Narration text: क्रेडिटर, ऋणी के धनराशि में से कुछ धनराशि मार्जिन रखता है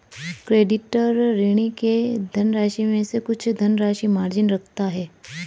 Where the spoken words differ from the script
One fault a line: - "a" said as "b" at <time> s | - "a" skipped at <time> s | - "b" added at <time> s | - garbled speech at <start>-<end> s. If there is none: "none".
none